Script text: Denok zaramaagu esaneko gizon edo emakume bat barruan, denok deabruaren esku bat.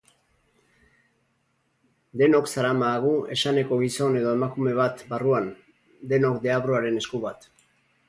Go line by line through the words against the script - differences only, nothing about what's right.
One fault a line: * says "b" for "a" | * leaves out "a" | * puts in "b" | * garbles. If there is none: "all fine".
all fine